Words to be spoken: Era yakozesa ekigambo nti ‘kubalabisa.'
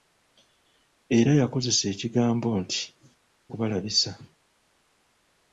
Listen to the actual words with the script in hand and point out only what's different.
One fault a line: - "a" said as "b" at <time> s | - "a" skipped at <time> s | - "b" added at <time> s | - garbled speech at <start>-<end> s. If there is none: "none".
none